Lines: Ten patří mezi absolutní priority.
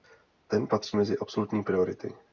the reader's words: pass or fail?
pass